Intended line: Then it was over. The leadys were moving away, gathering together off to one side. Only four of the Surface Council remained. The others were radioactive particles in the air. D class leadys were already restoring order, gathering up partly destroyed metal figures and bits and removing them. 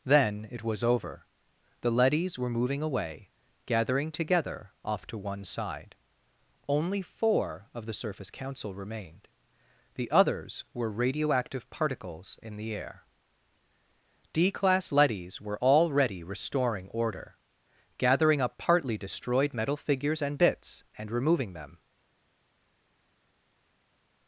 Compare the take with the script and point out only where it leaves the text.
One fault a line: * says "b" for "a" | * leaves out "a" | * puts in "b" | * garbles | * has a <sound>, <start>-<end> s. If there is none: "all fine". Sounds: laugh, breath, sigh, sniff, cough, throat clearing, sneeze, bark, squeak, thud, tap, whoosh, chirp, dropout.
all fine